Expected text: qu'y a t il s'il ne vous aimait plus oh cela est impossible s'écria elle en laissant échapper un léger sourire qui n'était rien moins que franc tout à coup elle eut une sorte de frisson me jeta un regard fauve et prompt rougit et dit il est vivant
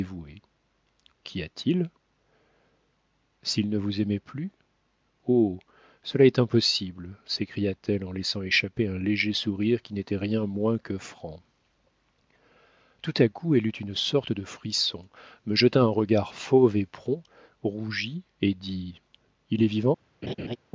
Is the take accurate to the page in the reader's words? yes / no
no